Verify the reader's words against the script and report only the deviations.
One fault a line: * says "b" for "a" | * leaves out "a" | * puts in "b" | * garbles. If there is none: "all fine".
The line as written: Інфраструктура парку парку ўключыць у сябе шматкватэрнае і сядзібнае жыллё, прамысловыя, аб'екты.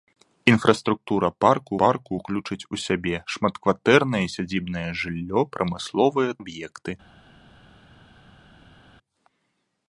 all fine